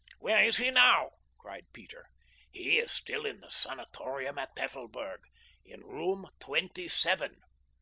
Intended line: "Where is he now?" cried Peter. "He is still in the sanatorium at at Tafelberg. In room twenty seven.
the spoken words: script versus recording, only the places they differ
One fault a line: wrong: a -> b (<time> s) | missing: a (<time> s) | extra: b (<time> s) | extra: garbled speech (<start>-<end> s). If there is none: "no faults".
missing: at (4.5 s)